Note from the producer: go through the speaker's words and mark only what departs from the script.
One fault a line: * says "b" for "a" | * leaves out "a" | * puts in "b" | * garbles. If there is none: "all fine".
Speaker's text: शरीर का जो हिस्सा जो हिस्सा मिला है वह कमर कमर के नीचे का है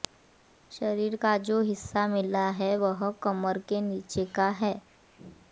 * leaves out "जो हिस्सा"
* leaves out "कमर"